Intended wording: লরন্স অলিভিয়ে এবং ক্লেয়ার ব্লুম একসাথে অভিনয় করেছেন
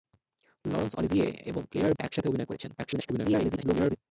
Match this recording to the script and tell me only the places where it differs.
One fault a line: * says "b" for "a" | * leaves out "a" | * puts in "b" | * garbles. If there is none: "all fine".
* leaves out "ব্লুম"
* garbles